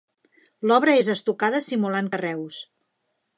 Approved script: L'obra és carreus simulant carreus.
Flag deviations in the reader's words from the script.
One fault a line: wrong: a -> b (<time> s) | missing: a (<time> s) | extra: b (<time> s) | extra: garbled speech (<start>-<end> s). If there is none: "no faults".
wrong: carreus -> estucada (1.2 s)